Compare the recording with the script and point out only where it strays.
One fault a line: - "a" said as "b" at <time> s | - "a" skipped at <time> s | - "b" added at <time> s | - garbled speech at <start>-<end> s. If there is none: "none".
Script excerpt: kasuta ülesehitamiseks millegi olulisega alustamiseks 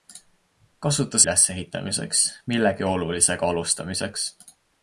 none